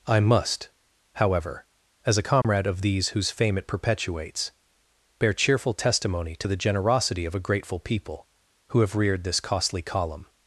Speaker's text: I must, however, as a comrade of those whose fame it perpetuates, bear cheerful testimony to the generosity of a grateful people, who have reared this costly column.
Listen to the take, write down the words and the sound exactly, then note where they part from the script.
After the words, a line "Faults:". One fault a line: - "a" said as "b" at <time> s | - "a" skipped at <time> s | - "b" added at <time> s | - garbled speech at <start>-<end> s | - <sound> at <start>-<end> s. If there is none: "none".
I must, however, as a comrade of these whose fame it perpetuates, bear cheerful testimony to the generosity of a grateful people, who have reared this costly column.
Faults:
- dropout at 2.4-2.4 s
- "those" said as "these" at 2.8 s